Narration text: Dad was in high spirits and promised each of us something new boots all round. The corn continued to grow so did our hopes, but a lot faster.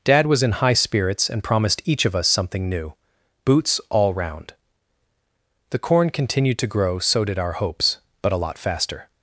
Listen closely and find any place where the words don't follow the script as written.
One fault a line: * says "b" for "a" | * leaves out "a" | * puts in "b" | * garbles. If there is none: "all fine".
all fine